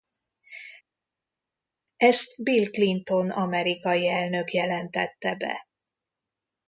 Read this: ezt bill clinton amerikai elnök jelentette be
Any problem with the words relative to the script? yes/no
no